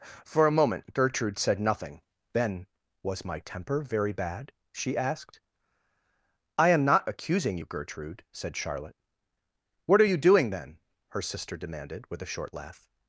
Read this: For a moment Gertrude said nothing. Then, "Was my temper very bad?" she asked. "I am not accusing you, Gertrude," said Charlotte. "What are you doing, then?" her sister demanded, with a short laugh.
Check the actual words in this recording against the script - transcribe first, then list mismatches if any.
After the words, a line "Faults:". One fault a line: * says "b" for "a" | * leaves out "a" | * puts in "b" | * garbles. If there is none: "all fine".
For a moment Gertrude said nothing. Then, "Was my temper very bad?" she asked. "I am not accusing you, Gertrude," said Charlotte. "What are you doing, then?" her sister demanded, with a short laugh.
Faults:
all fine